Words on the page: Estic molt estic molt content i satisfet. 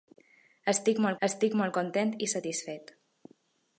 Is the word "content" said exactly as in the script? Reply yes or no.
yes